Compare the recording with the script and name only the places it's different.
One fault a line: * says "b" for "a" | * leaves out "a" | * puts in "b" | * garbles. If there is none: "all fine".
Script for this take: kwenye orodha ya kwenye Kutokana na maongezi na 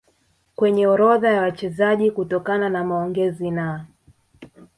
* says "wachezaji" for "kwenye"